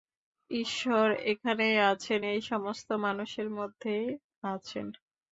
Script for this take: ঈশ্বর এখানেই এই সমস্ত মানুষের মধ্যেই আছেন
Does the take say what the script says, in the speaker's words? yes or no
no